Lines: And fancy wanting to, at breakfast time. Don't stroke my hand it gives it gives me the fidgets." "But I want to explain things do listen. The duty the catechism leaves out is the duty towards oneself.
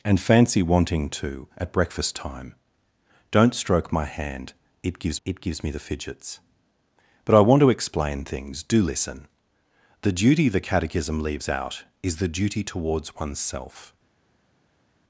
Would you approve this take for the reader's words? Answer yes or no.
yes